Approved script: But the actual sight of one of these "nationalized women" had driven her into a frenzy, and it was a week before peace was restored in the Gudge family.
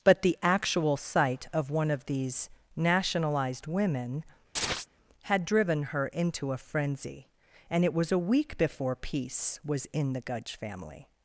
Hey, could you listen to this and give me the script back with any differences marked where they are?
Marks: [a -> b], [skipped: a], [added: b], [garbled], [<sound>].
But the actual sight of one of these "nationalized women" [chirp] had driven her into a frenzy, and it was a week before peace was [skipped: restored] in the Gudge family.